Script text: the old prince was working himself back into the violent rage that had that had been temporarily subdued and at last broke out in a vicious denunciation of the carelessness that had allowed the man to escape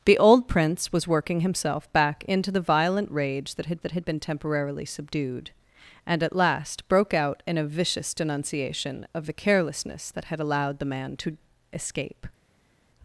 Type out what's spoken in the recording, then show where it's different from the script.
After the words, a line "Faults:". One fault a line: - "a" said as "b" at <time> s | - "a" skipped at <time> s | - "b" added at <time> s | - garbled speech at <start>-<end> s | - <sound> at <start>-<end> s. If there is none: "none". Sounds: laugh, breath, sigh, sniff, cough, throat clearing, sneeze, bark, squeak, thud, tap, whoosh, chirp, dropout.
the old prince was working himself back into the violent rage that had that had been temporarily subdued and at last broke out in a vicious denunciation of the carelessness that had allowed the man to escape
Faults:
none